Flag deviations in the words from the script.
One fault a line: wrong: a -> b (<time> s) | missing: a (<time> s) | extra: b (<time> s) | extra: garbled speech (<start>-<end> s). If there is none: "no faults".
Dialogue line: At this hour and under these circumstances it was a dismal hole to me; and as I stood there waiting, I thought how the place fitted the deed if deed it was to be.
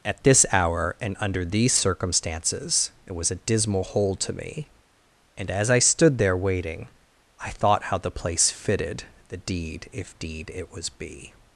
missing: to (10.9 s)